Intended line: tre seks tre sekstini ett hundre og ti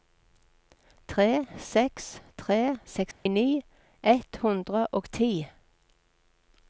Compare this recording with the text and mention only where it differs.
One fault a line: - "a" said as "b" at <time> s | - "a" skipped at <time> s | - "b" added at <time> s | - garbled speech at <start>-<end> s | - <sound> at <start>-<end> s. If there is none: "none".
- dropout at 3.1-3.3 s